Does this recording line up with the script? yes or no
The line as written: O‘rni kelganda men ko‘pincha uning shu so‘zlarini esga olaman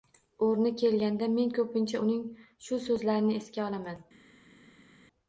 yes